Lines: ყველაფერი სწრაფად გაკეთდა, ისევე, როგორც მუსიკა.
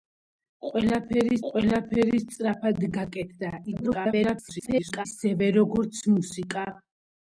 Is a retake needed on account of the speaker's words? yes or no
yes